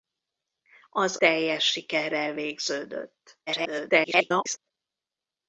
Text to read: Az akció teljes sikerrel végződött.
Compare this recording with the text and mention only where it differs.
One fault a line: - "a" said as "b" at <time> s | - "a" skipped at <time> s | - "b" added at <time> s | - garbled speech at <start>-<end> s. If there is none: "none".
- "akció" skipped at 1.2 s
- garbled speech at 3.5-4.7 s